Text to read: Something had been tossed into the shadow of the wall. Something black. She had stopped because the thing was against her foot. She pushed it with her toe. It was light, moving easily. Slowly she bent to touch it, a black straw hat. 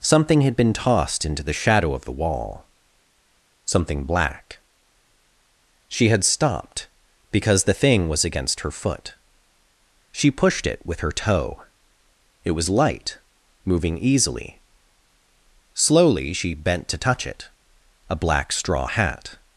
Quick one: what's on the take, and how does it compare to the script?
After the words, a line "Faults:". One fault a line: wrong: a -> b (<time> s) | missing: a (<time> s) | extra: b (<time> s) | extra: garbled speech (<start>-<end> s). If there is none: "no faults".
Something had been tossed into the shadow of the wall. Something black. She had stopped because the thing was against her foot. She pushed it with her toe. It was light, moving easily. Slowly she bent to touch it, a black straw hat.
Faults:
no faults